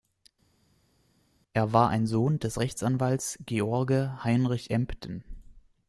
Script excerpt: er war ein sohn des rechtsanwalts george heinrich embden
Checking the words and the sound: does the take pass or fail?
pass